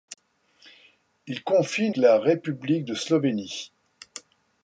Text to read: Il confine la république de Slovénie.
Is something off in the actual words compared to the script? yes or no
no